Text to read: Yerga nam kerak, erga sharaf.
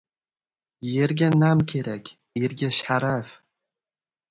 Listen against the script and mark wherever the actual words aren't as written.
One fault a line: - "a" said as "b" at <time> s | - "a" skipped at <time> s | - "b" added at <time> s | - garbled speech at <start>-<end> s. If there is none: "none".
none